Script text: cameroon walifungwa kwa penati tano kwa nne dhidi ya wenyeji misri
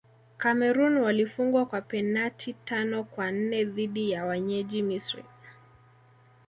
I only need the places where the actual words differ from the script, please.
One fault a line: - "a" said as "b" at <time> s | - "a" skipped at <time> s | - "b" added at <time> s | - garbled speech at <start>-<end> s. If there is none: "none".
none